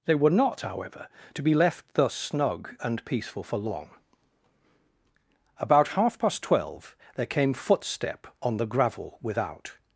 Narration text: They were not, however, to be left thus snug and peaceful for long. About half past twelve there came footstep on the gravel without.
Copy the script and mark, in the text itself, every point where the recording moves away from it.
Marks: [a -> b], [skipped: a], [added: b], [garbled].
They were not, however, to be left thus snug and peaceful for long. About half past twelve there came footstep on the gravel without.